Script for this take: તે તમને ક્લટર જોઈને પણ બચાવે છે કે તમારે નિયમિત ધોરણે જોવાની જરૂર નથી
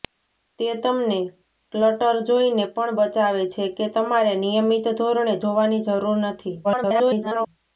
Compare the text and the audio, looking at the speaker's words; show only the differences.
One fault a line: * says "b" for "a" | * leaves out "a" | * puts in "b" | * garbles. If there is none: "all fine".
* garbles